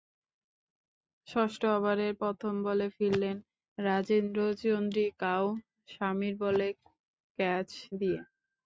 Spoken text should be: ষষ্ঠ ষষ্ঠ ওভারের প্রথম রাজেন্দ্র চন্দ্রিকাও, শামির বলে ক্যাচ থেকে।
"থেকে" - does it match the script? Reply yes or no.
no